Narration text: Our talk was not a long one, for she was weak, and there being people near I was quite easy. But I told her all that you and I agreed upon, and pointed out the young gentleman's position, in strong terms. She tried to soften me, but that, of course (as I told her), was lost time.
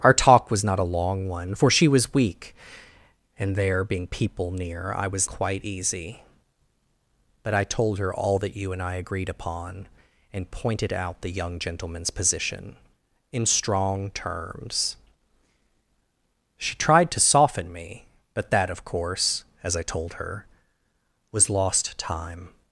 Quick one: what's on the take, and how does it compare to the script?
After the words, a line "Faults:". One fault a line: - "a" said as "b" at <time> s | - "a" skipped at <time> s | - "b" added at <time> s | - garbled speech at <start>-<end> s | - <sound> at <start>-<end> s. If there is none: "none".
Our talk was not a long one, for she was weak, and there being people near I was quite easy. But I told her all that you and I agreed upon, and pointed out the young gentleman's position, in strong terms. She tried to soften me, but that, of course (as I told her), was lost time.
Faults:
none